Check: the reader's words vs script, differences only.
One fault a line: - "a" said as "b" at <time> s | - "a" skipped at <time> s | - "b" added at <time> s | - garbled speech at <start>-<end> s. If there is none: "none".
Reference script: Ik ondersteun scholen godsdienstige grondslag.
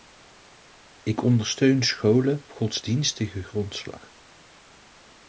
none